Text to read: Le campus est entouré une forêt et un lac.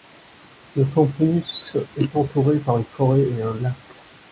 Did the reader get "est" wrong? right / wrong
right